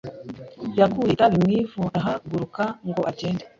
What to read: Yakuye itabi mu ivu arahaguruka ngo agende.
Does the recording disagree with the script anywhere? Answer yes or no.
no